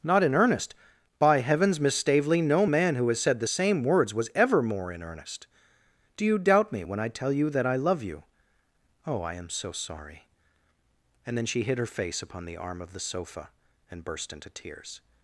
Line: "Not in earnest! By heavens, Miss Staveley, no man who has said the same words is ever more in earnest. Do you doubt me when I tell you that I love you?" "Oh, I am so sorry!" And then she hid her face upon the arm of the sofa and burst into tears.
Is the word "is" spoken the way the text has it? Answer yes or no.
no